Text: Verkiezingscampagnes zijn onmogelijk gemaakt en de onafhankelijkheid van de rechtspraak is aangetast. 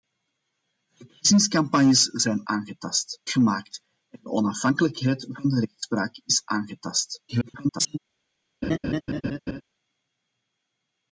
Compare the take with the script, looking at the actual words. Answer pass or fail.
fail